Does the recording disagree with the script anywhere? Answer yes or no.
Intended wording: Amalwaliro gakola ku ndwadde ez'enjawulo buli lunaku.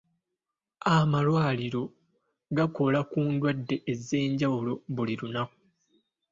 no